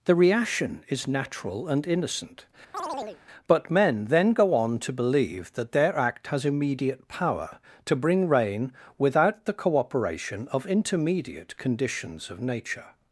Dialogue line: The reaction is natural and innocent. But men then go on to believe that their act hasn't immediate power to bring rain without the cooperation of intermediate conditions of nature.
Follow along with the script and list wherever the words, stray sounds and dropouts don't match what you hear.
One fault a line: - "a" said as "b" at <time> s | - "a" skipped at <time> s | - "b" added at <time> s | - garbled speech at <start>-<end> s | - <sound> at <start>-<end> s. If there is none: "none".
- chirp at 2.7-3.2 s
- "hasn't" said as "has" at 6.3 s